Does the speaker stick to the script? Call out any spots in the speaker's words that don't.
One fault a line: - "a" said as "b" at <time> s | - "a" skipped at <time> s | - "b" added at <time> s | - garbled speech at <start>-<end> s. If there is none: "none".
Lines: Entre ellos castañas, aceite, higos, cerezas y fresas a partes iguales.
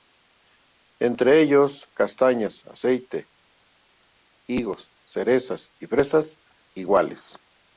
- "a partes" skipped at 6.4 s